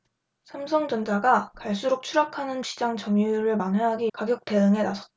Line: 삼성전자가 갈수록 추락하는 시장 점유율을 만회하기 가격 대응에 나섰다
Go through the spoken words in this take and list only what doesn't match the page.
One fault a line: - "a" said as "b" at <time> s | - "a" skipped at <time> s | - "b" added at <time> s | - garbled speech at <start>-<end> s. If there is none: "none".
none